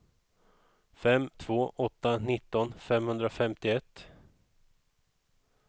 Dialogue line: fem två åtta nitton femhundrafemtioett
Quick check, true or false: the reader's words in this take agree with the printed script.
true